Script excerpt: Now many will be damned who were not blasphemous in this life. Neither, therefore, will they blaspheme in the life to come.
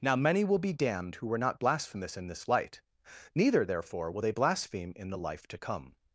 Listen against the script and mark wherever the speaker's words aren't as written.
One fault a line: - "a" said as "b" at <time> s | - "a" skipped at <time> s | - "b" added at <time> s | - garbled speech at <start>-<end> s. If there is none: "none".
- "life" said as "light" at 2.5 s